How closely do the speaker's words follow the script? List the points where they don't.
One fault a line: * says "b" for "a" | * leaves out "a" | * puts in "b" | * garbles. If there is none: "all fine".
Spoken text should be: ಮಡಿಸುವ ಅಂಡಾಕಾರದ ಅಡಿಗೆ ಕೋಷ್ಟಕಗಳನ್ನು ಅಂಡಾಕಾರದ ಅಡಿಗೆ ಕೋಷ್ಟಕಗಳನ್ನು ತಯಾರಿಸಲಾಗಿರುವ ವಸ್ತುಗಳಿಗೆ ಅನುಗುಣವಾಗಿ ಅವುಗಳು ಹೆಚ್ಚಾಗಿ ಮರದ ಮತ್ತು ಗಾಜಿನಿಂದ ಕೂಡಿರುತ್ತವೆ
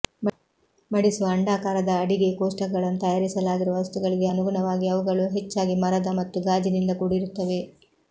* leaves out "ಅಂಡಾಕಾರದ ಅಡಿಗೆ ಕೋಷ್ಟಕಗಳನ್ನು"